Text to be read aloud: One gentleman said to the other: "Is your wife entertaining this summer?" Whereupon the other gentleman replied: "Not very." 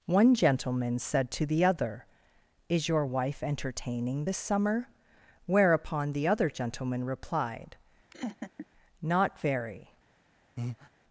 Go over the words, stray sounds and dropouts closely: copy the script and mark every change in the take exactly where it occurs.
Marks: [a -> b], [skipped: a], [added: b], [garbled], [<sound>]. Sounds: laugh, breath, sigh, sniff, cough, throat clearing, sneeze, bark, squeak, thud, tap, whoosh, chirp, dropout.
One gentleman said to the other: "Is your wife entertaining this summer?" Whereupon the other gentleman replied: [laugh] "Not very." [breath]